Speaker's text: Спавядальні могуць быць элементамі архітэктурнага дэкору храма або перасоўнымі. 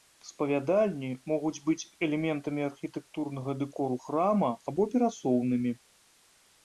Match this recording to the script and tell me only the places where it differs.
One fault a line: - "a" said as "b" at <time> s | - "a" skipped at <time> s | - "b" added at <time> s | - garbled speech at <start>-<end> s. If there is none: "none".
none